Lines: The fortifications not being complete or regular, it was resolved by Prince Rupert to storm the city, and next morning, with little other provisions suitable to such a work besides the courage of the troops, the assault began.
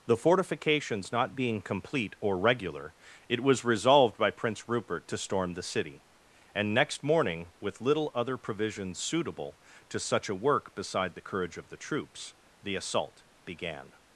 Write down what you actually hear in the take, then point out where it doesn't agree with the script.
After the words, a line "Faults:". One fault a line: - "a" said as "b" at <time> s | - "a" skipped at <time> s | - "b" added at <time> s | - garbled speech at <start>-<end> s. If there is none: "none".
The fortifications not being complete or regular, it was resolved by Prince Rupert to storm the city, and next morning, with little other provisions suitable to such a work beside the courage of the troops, the assault began.
Faults:
- "besides" said as "beside" at 10.7 s